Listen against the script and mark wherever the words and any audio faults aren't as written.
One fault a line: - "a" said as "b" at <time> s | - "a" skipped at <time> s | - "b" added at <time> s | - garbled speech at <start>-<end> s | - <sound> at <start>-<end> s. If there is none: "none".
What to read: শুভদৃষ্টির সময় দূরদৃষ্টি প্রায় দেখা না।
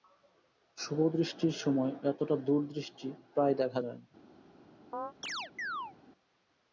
- "এতটা" added at 2.0 s
- "যায়" added at 3.8 s
- chirp at 4.9-5.9 s